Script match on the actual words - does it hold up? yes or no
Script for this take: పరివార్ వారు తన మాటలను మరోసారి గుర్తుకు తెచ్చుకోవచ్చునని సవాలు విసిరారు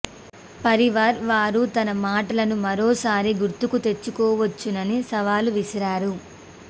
yes